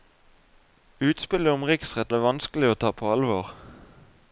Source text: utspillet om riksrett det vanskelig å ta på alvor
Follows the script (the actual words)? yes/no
yes